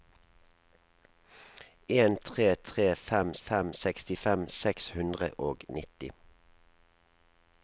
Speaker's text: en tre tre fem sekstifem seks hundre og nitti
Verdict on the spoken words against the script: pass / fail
fail